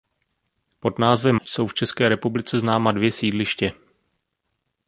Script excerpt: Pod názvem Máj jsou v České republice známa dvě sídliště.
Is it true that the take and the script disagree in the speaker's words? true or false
true